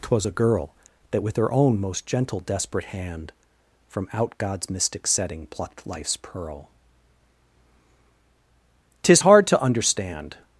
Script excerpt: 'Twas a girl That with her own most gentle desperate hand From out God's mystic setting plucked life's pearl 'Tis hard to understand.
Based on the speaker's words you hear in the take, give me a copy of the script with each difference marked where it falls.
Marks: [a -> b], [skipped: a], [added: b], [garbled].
'Twas a girl That with her own most gentle desperate hand From out God's mystic setting plucked life's pearl 'Tis hard to understand.